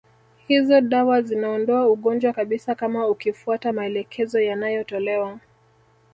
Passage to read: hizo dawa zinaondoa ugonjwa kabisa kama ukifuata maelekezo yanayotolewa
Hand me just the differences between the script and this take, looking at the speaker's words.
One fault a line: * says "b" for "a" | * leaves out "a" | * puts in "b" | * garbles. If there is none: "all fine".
all fine